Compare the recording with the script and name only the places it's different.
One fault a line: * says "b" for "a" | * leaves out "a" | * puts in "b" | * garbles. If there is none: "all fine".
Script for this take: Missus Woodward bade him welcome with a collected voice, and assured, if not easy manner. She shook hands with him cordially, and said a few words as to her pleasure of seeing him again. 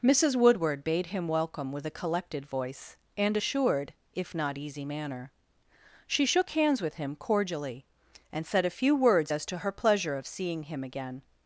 all fine